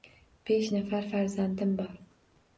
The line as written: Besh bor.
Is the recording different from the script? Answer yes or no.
yes